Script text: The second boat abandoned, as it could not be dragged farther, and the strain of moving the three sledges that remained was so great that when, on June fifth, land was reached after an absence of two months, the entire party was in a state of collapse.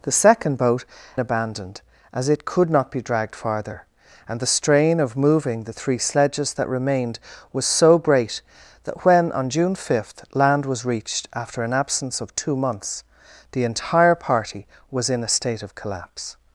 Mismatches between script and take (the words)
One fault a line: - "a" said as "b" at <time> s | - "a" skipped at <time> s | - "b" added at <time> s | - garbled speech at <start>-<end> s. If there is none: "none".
none